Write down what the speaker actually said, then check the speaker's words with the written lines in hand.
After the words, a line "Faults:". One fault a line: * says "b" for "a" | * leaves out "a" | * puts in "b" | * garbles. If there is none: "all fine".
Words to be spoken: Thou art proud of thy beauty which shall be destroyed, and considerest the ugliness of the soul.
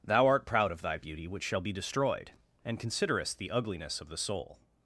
Thou art proud of thy beauty which shall be destroyed, and considerest the ugliness of the soul.
Faults:
all fine